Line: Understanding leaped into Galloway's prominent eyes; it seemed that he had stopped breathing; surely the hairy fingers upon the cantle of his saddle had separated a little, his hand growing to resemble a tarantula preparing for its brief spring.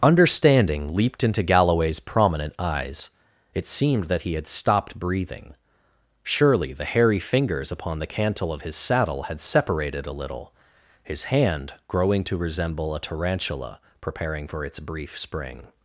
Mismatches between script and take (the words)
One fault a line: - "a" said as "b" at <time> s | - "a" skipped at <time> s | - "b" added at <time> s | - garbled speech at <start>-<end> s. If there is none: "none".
none